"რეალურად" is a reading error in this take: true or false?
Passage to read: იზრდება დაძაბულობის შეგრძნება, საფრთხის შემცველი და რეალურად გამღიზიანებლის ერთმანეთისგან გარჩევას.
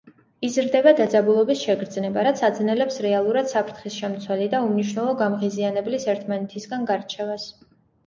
true